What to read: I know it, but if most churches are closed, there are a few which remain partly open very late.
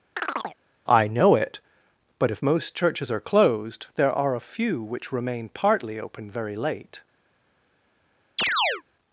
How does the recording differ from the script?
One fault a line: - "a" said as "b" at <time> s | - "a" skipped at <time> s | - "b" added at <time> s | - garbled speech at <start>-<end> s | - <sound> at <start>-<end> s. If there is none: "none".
- chirp at 0.2-0.6 s
- chirp at 8.4-8.8 s